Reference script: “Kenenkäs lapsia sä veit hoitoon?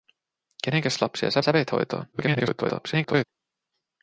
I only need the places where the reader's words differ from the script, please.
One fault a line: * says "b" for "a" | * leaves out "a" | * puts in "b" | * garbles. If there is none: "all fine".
* puts in "sä"
* garbles